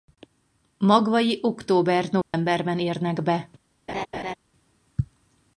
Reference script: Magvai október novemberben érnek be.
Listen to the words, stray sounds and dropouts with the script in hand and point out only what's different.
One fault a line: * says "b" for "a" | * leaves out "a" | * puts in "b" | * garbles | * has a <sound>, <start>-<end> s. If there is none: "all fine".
* has a dropout, 2.2-2.3 s
* has a laugh, 3.9-4.4 s